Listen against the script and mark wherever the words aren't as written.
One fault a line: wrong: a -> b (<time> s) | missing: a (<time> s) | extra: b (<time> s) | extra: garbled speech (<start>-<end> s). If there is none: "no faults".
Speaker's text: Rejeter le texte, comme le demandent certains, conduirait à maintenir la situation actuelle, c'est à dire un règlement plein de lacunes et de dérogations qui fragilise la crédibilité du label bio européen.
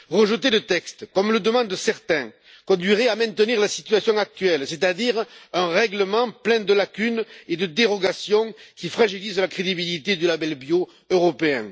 no faults